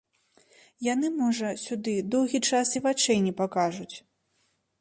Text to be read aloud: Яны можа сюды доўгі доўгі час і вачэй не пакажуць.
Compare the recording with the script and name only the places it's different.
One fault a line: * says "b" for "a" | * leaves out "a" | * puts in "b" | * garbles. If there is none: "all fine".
* leaves out "доўгі"